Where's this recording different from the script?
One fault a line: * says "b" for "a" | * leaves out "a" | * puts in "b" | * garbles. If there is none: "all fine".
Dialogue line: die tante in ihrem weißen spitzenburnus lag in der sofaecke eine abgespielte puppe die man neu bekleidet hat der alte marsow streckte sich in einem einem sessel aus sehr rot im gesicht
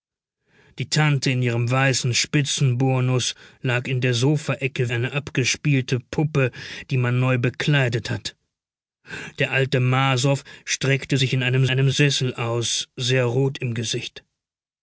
all fine